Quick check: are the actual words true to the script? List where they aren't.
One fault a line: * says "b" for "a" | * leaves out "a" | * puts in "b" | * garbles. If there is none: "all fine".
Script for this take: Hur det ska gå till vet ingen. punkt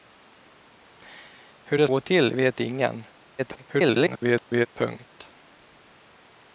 * leaves out "ska"
* garbles